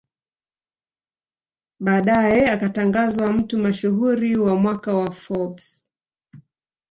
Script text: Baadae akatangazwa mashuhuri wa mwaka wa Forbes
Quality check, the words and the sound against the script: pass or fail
fail